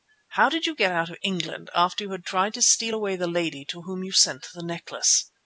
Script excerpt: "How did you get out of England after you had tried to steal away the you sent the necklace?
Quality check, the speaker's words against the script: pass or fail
fail